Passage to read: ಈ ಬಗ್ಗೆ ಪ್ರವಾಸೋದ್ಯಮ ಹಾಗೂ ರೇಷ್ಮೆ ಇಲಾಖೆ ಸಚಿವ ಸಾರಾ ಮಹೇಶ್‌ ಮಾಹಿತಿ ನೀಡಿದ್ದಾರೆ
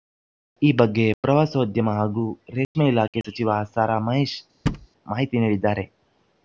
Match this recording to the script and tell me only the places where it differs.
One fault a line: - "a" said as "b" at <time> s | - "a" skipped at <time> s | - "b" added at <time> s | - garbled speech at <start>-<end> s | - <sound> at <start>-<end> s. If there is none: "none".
- dropout at 2.6-2.7 s
- thud at 4.7-4.9 s